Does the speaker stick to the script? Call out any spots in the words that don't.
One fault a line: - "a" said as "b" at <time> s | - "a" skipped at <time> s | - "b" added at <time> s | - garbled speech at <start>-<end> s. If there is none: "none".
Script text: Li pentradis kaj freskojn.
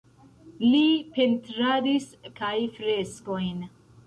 none